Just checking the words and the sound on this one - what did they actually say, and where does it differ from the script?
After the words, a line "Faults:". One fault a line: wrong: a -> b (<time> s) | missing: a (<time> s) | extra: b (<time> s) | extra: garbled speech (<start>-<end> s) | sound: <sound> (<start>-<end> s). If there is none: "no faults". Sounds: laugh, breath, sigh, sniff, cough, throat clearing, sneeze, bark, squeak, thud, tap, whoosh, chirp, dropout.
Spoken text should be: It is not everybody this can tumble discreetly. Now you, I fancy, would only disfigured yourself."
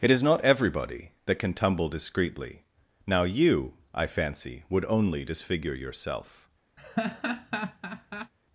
It is not everybody that can tumble discreetly. Now you, I fancy, would only disfigure yourself."
Faults:
wrong: this -> that (1.3 s)
wrong: disfigured -> disfigure (5.3 s)
sound: laugh (6.8-8.3 s)